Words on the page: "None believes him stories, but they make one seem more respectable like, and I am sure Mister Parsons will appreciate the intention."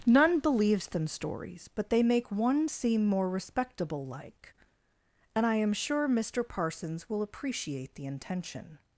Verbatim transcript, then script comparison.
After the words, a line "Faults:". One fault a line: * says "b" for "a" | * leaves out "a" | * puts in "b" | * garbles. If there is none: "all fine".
"None believes them stories, but they make one seem more respectable like, and I am sure Mister Parsons will appreciate the intention."
Faults:
* says "them" for "him"